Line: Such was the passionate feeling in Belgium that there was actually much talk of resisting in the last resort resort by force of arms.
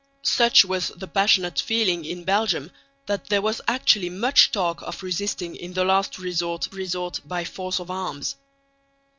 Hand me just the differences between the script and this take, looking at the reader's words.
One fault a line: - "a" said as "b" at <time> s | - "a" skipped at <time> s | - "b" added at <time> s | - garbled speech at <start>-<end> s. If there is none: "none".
none